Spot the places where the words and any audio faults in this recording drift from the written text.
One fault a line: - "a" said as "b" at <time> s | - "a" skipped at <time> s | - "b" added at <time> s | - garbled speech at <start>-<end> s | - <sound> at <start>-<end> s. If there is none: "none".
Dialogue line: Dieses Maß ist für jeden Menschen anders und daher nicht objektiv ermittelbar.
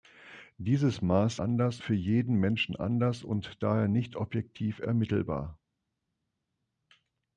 - "ist" said as "anders" at 1.3 s